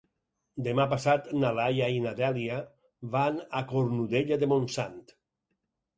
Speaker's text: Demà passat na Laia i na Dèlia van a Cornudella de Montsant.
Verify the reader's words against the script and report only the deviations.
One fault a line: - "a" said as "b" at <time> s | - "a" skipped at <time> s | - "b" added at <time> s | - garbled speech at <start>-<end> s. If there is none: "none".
none